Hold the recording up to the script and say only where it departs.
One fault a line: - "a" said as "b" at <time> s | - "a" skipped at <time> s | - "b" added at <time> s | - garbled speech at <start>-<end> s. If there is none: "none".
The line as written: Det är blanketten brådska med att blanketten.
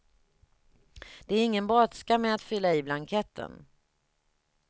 - "blanketten" said as "ingen" at 1.4 s
- "fylla i" added at 2.4 s